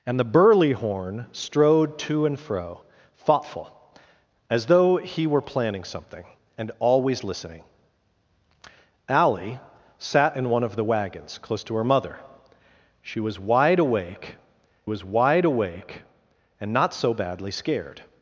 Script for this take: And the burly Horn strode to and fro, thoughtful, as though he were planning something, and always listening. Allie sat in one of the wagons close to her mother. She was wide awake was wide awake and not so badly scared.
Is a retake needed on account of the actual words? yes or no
no